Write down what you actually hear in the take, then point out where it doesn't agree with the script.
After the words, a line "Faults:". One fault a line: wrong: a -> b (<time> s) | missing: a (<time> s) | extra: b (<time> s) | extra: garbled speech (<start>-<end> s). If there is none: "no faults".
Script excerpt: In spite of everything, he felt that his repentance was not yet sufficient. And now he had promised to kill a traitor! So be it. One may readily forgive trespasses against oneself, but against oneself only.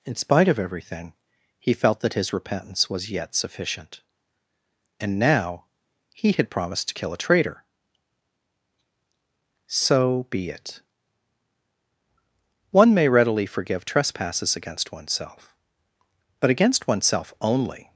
In spite of everything, he felt that his repentance was yet sufficient. And now he had promised to kill a traitor! So be it. One may readily forgive trespasses against oneself, but against oneself only.
Faults:
missing: not (3.1 s)